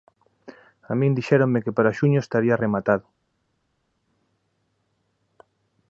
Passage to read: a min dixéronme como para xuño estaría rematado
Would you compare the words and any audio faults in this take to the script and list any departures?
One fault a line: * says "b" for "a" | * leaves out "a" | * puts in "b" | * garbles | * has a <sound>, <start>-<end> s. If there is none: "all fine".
* says "que" for "como"